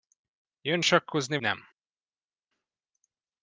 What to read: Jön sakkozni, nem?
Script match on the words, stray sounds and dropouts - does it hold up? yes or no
yes